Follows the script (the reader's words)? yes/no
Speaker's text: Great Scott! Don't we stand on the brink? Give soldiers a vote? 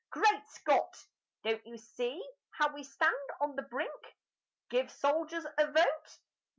no